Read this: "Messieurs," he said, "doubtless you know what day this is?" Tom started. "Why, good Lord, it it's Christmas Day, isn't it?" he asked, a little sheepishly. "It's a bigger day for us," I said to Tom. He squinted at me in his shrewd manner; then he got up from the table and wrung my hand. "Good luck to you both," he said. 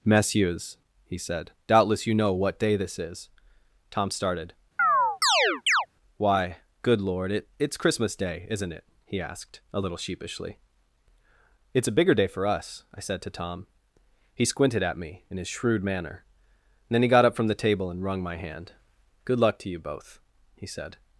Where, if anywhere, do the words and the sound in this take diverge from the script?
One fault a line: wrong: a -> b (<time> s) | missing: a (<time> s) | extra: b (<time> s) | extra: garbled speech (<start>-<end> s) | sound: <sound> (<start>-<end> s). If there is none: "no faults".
sound: chirp (4.8-5.9 s)